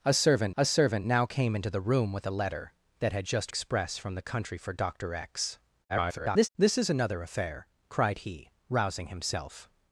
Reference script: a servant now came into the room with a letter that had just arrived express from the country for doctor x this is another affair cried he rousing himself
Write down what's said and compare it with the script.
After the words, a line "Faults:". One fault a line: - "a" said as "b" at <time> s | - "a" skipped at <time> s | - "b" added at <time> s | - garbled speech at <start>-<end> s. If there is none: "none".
a servant a servant now came into the room with a letter that had just express from the country for doctor x [garbled] this is another affair cried he rousing himself
Faults:
- "a servant" added at 0.5 s
- "arrived" skipped at 3.5 s
- garbled speech at 5.9-6.5 s